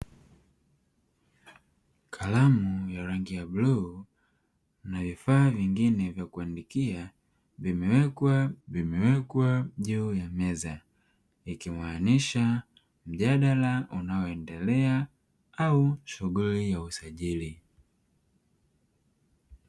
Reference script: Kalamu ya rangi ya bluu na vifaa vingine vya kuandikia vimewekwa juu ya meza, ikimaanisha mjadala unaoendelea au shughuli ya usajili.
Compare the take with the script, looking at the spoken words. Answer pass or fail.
fail